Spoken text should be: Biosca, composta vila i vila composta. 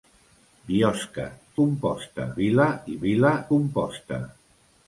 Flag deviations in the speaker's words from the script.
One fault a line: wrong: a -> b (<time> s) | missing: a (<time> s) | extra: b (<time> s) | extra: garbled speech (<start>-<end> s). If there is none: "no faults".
no faults